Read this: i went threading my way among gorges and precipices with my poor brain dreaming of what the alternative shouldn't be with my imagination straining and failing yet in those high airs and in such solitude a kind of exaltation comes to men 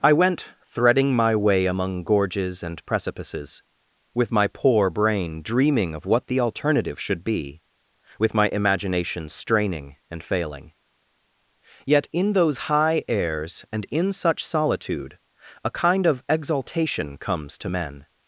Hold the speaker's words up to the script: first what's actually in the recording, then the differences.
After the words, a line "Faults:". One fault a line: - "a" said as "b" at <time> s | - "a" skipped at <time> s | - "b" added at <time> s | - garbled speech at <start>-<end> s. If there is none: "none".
i went threading my way among gorges and precipices with my poor brain dreaming of what the alternative should be with my imagination straining and failing yet in those high airs and in such solitude a kind of exaltation comes to men
Faults:
- "shouldn't" said as "should" at 7.0 s